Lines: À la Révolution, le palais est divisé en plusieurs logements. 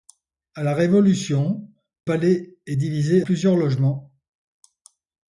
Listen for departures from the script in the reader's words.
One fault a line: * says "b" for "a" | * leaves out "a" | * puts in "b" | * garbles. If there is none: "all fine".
* leaves out "le"
* leaves out "en"